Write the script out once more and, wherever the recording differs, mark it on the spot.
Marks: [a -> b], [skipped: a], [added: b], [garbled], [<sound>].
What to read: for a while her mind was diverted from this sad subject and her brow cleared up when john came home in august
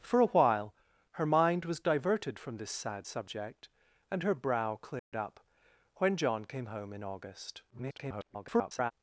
for a while her mind was diverted from this sad subject and her brow cleared [dropout] up when john came home in august [garbled]